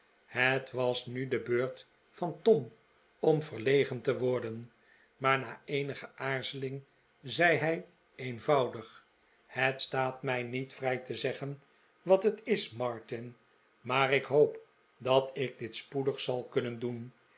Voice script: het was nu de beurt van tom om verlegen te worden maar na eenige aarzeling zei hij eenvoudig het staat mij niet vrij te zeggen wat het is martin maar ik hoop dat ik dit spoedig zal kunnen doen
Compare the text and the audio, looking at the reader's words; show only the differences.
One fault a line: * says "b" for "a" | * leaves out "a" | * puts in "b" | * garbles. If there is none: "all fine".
all fine